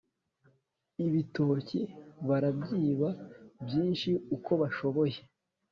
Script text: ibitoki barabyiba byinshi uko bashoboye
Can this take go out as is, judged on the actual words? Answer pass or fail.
pass